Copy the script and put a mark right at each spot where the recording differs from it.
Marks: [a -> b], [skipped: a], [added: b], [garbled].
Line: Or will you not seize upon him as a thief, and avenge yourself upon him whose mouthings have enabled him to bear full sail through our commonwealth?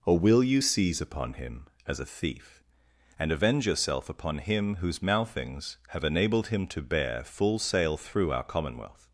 Or will you [skipped: not] seize upon him as a thief, and avenge yourself upon him whose mouthings have enabled him to bear full sail through our commonwealth?